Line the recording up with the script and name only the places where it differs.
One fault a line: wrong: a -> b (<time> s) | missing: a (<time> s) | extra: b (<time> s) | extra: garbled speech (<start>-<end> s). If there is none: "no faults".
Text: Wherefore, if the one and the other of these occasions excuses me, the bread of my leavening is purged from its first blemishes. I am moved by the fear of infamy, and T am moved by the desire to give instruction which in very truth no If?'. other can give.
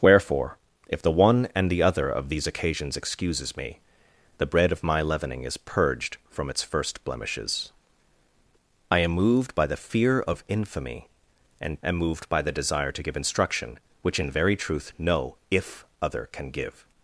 missing: T (11.8 s)